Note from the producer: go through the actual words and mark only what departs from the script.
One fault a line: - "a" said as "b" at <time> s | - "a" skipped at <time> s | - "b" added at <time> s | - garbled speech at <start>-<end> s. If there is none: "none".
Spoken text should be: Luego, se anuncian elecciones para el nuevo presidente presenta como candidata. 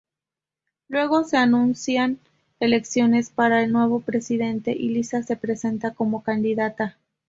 - "y Lisa se" added at 4.7 s